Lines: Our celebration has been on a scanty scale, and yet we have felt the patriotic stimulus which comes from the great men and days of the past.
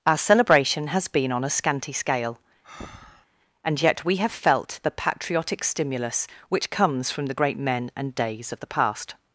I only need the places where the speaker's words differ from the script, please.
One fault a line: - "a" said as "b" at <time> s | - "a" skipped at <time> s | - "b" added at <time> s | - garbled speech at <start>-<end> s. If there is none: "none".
none